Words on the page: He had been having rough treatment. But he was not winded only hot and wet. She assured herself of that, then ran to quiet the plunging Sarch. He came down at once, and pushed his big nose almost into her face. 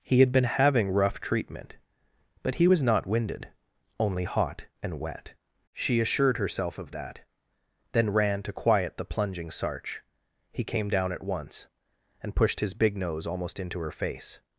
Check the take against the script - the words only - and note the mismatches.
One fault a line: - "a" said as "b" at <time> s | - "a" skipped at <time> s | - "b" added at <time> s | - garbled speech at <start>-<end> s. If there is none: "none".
none